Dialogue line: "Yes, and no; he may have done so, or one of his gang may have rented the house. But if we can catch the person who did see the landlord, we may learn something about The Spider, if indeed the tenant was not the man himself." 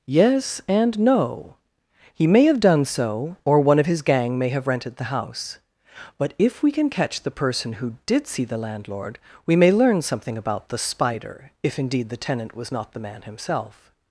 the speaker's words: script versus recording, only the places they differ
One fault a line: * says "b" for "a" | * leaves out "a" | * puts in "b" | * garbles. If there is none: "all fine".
all fine